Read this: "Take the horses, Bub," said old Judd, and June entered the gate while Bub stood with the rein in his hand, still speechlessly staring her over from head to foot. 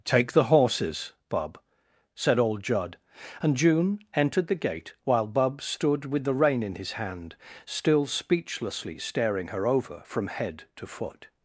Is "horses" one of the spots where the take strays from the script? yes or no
no